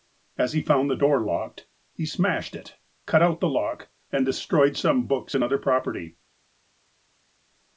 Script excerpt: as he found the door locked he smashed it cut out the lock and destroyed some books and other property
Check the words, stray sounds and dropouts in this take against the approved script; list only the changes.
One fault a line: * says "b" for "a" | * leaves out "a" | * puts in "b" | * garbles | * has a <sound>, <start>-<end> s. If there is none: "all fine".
all fine